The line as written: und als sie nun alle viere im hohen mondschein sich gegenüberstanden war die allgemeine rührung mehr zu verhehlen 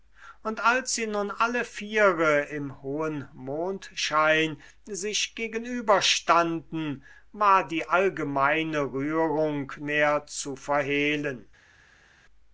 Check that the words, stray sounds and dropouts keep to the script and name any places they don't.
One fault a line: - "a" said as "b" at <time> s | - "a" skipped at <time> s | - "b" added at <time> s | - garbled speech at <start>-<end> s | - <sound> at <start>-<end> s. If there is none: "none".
none